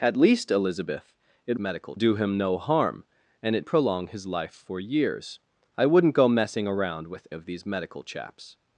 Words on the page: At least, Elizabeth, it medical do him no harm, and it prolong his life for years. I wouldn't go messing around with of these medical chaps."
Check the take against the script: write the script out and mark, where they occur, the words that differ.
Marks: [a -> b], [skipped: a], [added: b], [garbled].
At least, Elizabeth, it medical do him no harm, and it prolong his life for years. I wouldn't go messing around with of these medical chaps."